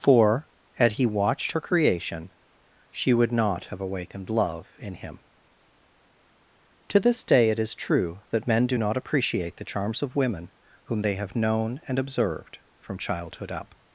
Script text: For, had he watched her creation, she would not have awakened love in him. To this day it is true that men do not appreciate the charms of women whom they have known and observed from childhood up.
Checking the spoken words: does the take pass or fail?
pass